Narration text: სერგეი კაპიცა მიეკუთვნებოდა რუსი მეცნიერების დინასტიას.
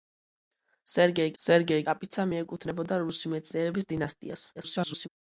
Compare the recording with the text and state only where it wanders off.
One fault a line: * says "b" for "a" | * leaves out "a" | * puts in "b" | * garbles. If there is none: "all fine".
* puts in "სერგეი"
* garbles